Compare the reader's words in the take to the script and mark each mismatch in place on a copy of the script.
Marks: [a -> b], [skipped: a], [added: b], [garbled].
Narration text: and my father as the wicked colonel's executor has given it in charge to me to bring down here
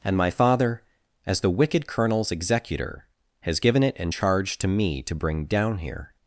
and my father as the wicked colonel's executor has given it in charge to me to bring down here